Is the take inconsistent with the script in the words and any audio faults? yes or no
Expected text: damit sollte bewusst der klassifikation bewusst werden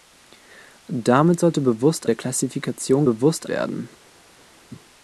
no